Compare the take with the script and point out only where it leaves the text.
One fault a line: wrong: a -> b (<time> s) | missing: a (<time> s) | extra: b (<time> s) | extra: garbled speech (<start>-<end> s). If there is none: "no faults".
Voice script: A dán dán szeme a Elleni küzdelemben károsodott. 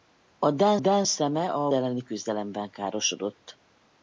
no faults